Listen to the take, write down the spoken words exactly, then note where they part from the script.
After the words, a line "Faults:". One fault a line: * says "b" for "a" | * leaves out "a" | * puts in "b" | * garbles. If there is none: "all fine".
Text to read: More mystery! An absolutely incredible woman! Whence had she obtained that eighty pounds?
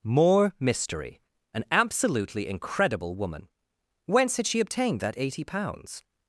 More mystery! An absolutely incredible woman! Whence had she obtained that eighty pounds?
Faults:
all fine